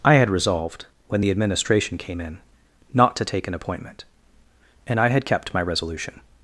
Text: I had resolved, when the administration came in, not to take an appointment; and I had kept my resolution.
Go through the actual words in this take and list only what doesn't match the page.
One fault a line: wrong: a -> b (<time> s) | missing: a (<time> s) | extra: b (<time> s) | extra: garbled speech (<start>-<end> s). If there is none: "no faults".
no faults